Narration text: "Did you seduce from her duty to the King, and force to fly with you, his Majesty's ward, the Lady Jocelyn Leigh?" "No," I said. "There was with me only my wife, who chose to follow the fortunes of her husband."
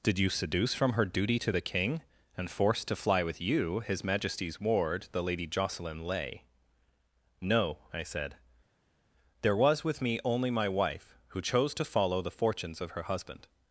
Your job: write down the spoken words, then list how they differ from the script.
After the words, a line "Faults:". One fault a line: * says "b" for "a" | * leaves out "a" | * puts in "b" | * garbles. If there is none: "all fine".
"Did you seduce from her duty to the King, and force to fly with you, his Majesty's ward, the Lady Jocelyn Leigh?" "No," I said. "There was with me only my wife, who chose to follow the fortunes of her husband."
Faults:
all fine